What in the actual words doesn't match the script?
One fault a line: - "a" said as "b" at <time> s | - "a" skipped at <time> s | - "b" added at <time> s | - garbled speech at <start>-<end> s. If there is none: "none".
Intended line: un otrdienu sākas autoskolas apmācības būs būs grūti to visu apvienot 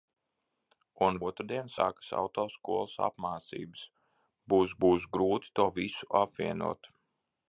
none